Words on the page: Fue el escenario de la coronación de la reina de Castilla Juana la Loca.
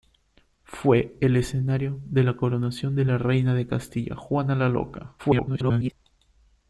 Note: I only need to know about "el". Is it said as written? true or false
true